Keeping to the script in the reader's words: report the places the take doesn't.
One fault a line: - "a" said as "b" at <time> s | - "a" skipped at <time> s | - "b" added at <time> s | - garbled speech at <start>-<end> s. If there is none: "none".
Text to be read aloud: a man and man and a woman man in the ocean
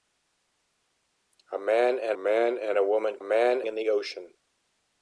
none